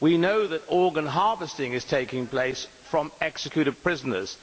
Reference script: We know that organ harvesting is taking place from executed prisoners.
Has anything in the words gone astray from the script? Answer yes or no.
no